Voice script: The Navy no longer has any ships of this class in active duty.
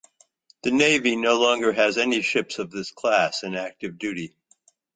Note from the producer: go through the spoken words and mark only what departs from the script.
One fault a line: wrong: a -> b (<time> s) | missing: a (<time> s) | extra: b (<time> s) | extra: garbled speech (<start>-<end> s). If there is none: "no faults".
no faults